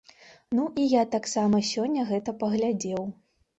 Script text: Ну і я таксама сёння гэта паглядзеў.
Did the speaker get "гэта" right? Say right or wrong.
right